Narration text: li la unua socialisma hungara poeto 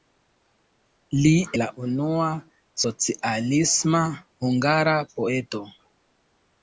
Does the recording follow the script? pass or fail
pass